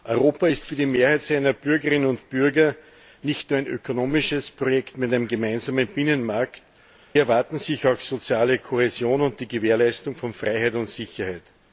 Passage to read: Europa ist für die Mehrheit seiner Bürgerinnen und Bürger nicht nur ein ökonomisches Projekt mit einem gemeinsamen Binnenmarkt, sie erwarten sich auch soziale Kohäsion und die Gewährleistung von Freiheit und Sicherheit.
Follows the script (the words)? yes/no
no